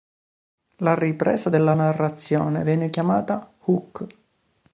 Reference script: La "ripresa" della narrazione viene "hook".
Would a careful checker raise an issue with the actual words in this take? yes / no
yes